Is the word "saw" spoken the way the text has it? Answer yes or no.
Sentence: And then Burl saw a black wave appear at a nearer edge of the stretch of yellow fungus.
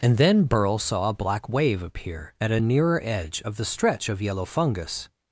yes